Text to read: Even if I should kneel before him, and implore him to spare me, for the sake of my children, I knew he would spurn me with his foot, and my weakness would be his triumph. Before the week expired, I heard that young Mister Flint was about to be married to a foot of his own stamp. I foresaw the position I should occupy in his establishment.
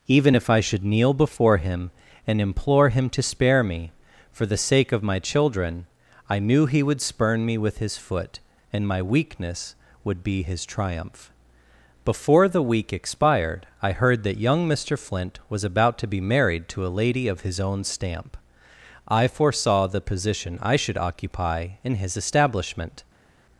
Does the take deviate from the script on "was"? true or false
false